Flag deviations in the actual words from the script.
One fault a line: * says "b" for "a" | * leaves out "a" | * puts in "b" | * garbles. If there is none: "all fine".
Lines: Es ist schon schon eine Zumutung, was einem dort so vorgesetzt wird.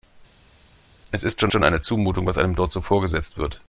all fine